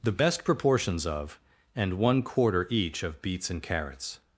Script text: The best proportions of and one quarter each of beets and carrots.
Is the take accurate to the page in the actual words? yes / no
yes